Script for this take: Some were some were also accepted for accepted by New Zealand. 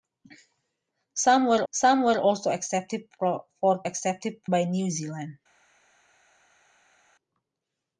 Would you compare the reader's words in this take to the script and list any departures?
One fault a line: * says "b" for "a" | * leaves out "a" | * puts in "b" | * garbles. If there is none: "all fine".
all fine